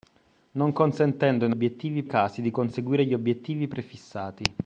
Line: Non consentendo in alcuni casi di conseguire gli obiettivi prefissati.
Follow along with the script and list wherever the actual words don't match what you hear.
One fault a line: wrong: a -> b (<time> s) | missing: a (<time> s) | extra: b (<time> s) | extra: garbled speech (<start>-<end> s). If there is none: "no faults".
wrong: alcuni -> obiettivi (1.5 s)